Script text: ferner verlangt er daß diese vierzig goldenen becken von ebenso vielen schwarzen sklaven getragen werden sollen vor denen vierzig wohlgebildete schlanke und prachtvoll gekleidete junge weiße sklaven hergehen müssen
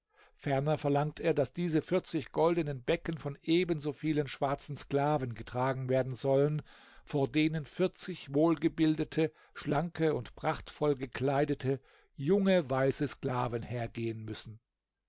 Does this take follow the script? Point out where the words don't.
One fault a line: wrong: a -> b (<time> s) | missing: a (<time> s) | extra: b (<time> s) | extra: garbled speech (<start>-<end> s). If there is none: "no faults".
no faults